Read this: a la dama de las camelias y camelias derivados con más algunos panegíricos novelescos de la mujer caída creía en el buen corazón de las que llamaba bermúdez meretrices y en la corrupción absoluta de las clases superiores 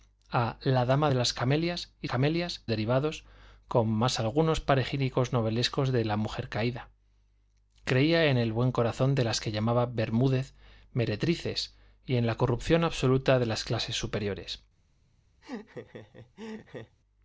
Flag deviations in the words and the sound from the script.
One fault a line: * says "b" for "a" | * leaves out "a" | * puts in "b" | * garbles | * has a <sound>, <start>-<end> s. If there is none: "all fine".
* has a laugh, 15.4-17.0 s